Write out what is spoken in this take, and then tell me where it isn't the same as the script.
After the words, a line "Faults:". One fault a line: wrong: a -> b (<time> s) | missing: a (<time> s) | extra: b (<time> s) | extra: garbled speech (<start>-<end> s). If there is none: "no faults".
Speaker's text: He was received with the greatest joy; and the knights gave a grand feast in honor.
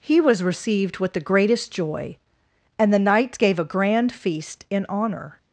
He was received with the greatest joy; and the knights gave a grand feast in honor.
Faults:
no faults